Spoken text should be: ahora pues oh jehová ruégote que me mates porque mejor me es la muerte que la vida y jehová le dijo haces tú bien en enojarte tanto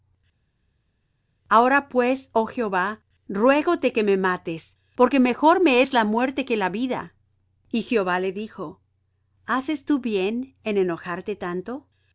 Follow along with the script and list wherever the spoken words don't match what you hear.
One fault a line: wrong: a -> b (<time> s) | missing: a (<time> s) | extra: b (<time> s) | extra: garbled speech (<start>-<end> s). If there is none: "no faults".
no faults